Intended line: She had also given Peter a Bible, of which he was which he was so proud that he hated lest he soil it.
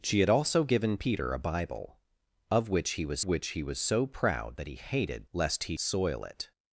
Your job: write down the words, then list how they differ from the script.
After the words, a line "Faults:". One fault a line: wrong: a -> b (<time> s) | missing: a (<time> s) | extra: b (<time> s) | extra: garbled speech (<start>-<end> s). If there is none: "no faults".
She had also given Peter a Bible, of which he was which he was so proud that he hated lest he soil it.
Faults:
no faults